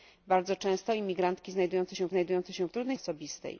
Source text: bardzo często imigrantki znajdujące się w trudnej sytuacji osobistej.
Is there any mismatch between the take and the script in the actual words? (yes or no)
yes